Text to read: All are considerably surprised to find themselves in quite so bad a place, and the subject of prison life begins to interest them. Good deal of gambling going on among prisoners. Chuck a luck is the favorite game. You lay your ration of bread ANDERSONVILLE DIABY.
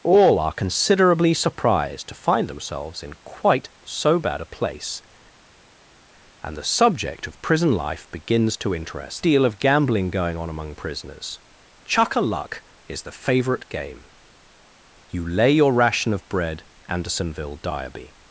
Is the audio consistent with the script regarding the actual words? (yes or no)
no